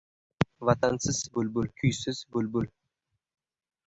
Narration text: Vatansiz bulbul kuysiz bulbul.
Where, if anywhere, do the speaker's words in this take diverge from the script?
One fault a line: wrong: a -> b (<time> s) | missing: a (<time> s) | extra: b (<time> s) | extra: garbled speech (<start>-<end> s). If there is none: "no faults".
no faults